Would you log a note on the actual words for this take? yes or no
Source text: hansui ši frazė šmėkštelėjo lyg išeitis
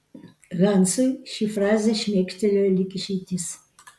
no